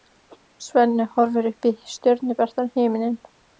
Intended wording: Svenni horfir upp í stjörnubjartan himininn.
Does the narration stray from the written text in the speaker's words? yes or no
no